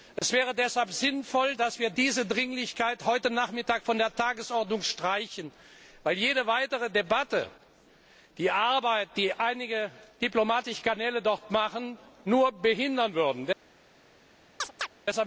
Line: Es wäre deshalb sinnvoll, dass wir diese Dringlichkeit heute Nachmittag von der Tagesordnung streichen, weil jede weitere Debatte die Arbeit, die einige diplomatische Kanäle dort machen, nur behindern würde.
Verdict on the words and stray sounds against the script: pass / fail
fail